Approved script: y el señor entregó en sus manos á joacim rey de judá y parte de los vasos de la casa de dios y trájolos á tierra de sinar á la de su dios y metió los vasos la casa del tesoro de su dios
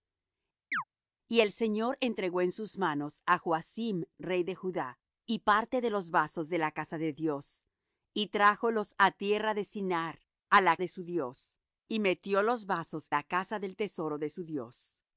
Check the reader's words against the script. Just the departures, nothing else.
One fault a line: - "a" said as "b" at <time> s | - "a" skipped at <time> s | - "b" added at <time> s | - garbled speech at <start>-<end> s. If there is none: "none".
none